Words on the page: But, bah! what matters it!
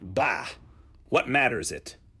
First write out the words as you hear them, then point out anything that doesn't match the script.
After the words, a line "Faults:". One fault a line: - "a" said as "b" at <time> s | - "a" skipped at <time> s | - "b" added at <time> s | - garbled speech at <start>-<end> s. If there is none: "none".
bah! what matters it!
Faults:
- "But" skipped at 0.0 s